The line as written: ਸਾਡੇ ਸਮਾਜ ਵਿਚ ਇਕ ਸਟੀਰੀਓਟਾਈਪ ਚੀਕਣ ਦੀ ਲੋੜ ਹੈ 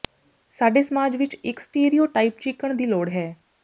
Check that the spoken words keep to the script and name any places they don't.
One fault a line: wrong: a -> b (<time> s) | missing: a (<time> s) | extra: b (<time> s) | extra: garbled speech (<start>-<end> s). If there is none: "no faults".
no faults